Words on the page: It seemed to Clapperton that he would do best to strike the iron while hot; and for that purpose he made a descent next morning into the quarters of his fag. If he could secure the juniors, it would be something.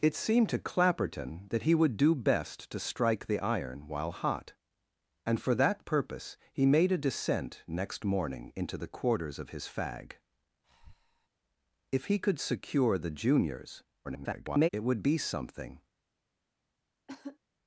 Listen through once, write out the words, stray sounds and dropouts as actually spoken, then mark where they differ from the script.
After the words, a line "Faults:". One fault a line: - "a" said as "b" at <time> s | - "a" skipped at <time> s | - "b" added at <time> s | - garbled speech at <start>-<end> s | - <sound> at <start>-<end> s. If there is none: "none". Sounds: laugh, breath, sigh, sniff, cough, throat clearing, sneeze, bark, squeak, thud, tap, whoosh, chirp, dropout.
It seemed to Clapperton that he would do best to strike the iron while hot; and for that purpose he made a descent next morning into the quarters of his fag. If he could secure the juniors, [garbled] it would be something.
Faults:
- breath at 10.6-11.3 s
- garbled speech at 14.0-14.7 s
- cough at 17.1-17.4 s